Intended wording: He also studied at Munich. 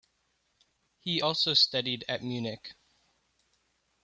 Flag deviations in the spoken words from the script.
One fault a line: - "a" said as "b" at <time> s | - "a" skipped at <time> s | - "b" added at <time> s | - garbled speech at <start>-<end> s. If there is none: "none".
none